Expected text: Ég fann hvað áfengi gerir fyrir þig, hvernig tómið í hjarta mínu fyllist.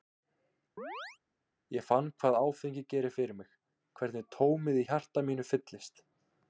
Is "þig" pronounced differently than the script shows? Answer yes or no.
yes